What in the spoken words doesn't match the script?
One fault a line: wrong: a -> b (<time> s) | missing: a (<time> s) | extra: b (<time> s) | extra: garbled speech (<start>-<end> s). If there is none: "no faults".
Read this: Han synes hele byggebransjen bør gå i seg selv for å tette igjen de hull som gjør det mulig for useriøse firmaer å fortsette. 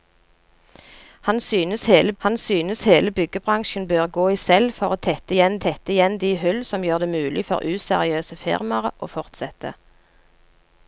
extra: han synes hele (2.2 s)
missing: seg (4.4 s)
extra: tette igjen (5.7 s)